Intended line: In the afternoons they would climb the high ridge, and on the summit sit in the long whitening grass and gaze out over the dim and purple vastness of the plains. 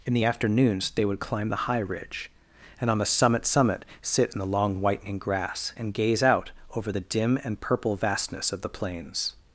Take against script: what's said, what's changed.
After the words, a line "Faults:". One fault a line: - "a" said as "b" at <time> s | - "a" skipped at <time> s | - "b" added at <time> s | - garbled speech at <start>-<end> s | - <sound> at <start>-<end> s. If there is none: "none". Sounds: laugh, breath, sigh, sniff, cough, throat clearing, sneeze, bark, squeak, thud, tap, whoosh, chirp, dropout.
In the afternoons they would climb the high ridge, and on the summit summit sit in the long whitening grass and gaze out over the dim and purple vastness of the plains.
Faults:
- "summit" added at 3.5 s